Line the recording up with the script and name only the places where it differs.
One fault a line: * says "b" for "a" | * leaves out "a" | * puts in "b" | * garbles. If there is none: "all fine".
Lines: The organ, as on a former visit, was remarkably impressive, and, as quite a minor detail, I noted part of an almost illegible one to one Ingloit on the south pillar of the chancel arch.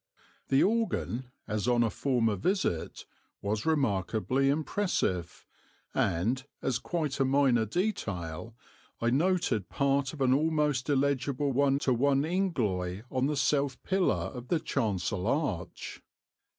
all fine